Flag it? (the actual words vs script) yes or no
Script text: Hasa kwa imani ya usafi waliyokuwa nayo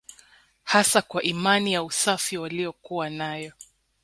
no